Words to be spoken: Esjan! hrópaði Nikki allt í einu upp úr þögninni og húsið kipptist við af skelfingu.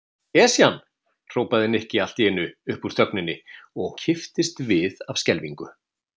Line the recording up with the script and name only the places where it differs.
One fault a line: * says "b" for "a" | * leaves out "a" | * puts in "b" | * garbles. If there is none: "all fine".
* leaves out "húsið"